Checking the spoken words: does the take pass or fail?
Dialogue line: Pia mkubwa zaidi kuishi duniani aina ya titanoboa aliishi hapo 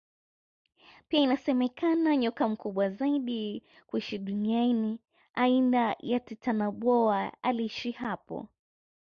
fail